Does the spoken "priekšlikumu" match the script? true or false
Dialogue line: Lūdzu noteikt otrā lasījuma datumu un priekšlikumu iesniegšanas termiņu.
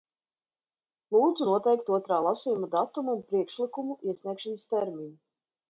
true